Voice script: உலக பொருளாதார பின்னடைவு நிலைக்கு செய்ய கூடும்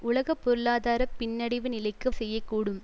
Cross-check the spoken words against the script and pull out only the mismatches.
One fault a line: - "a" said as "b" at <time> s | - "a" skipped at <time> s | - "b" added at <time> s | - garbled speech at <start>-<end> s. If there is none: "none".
none